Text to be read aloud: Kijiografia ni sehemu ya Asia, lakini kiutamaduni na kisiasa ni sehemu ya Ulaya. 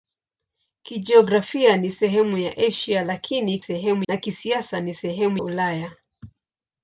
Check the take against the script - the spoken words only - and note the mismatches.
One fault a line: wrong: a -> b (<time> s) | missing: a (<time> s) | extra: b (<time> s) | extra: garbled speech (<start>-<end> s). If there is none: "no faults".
wrong: kiutamaduni -> sehemu (3.6 s)
missing: ya (5.4 s)